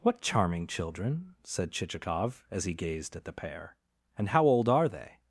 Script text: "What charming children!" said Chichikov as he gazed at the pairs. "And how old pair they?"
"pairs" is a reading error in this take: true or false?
true